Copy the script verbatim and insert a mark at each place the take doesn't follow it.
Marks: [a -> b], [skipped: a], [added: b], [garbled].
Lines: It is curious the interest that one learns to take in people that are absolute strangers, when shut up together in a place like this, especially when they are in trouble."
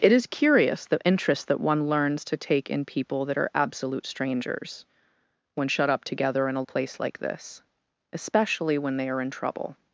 It is curious the interest that one learns to take in people that are absolute strangers, when shut up together in a place like this, especially when they are in trouble."